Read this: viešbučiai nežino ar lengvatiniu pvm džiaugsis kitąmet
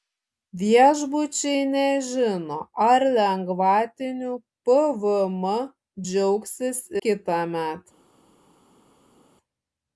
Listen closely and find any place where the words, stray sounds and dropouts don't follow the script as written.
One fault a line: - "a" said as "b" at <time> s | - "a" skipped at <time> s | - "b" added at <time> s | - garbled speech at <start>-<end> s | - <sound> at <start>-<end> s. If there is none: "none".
none